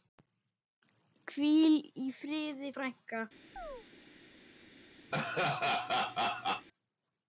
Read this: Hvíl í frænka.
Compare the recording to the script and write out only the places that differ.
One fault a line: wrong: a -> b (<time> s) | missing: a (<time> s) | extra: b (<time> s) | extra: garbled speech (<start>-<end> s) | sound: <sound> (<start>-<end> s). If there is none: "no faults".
extra: friði (2.2 s)
sound: chirp (3.6-3.9 s)
sound: laugh (5.1-6.7 s)